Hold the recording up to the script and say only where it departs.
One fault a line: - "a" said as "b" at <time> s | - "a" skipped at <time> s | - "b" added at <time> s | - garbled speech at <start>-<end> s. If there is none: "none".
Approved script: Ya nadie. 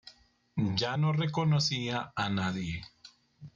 - "no reconocía a" added at 1.0 s